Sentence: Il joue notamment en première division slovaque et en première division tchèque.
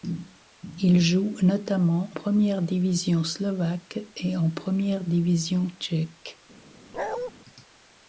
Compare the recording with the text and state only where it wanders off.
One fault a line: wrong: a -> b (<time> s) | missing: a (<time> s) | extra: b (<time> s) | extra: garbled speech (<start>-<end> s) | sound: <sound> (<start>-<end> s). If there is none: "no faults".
missing: en (2.1 s)
sound: bark (6.9-7.3 s)